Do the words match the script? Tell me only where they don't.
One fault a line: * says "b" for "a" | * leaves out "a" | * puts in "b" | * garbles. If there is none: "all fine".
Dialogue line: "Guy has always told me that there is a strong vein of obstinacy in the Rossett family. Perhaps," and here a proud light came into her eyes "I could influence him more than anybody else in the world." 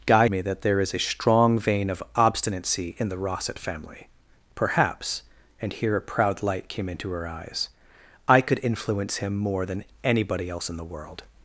* leaves out "has always told"